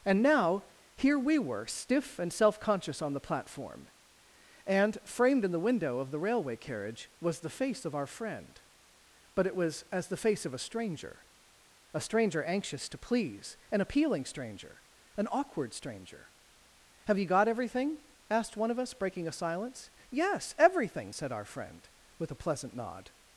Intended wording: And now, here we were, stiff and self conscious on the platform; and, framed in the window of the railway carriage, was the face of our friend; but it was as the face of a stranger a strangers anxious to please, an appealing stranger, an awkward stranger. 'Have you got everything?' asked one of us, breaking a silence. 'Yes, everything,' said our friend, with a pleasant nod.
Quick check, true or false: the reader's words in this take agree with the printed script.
false